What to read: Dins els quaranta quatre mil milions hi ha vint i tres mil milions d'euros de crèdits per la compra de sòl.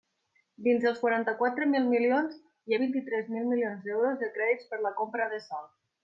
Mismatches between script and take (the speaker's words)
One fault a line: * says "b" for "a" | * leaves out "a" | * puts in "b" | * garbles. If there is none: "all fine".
all fine